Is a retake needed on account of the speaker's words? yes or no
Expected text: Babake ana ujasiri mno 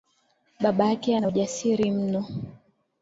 no